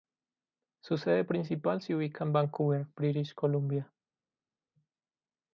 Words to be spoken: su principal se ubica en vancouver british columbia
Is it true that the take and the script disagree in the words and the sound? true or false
true